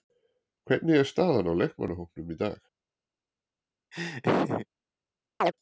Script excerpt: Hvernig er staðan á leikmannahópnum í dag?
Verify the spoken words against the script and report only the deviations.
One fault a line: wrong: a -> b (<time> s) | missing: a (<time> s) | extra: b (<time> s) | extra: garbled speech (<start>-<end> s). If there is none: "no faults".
no faults